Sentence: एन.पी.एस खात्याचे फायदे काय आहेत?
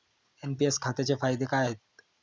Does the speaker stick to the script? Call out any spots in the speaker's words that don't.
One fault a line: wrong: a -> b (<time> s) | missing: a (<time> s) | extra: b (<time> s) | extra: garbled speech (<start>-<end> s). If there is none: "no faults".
no faults